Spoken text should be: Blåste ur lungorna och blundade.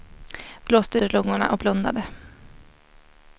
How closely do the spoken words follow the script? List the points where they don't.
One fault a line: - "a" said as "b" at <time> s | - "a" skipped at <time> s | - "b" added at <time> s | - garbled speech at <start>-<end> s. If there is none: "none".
none